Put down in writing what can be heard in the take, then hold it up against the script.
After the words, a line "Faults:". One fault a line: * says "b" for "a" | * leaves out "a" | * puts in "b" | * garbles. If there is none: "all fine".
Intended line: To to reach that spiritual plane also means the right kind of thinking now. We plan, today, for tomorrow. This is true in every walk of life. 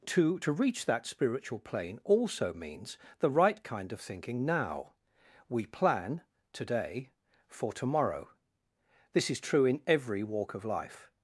To to reach that spiritual plane also means the right kind of thinking now. We plan, today, for tomorrow. This is true in every walk of life.
Faults:
all fine